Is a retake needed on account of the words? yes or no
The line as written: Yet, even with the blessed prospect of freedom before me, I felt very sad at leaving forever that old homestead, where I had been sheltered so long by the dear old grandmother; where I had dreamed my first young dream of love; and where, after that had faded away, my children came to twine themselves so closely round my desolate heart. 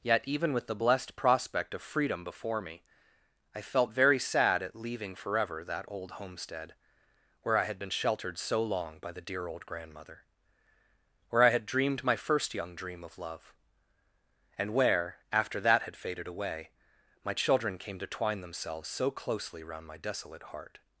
no